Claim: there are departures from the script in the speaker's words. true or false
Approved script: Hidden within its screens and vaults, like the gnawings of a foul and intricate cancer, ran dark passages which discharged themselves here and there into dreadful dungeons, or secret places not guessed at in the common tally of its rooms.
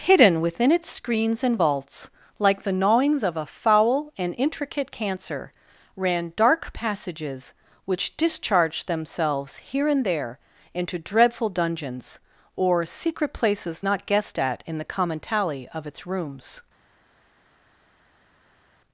false